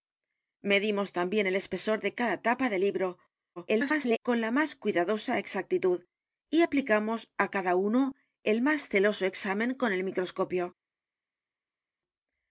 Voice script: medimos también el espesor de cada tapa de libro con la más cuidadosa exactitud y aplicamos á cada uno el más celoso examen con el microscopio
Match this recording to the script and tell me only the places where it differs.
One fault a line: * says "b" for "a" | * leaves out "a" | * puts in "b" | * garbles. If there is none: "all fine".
* garbles